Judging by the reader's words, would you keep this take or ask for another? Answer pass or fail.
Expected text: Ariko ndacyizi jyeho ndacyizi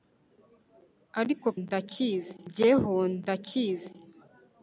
pass